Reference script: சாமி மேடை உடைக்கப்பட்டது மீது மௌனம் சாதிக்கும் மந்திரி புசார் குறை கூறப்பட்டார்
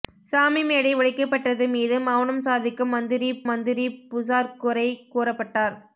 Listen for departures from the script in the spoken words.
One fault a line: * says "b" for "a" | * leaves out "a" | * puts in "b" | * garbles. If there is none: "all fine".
* puts in "மந்திரி"